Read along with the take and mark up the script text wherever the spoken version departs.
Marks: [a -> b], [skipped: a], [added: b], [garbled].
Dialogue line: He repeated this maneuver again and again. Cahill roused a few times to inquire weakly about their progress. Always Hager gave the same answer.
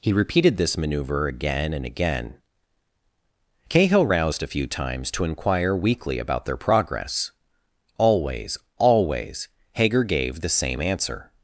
He repeated this maneuver again and again. Cahill roused a few times to inquire weakly about their progress. Always [added: Always] Hager gave the same answer.